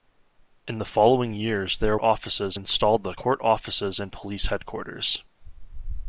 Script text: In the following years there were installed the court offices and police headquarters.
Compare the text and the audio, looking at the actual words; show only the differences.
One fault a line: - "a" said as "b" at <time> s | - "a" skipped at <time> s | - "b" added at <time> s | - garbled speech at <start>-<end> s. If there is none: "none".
- "were" said as "offices" at 2.0 s